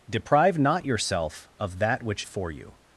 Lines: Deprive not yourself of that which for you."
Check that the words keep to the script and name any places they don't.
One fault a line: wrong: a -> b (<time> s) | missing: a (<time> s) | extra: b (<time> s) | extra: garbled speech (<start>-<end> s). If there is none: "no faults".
no faults